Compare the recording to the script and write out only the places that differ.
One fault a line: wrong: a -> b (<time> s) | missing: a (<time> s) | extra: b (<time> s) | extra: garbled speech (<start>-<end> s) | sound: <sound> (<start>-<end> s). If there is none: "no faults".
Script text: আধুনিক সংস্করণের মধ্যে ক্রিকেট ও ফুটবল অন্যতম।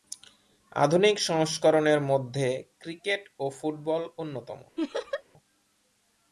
sound: laugh (4.8-5.2 s)